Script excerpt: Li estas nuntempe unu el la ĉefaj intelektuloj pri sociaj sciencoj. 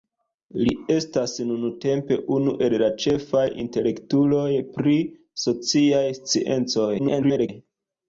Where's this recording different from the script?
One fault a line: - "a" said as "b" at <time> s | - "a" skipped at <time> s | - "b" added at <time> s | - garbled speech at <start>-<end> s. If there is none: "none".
- garbled speech at 7.0-7.5 s